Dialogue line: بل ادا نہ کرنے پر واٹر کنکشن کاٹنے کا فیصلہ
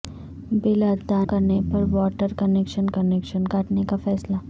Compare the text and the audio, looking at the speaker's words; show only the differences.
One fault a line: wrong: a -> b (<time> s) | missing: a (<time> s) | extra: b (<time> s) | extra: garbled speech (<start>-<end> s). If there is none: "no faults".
missing: نہ (1.2 s)
extra: کنکشن (2.9 s)